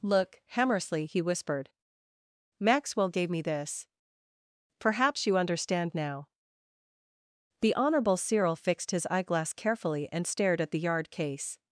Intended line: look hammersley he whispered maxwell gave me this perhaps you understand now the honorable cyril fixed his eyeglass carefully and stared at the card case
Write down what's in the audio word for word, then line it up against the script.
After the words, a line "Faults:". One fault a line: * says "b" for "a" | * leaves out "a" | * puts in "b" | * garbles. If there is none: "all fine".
look hammersley he whispered maxwell gave me this perhaps you understand now the honorable cyril fixed his eyeglass carefully and stared at the yard case
Faults:
* says "yard" for "card"